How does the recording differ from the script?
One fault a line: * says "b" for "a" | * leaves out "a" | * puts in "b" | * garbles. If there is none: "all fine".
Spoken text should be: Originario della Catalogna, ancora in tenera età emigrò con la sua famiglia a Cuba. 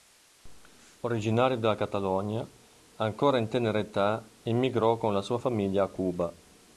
all fine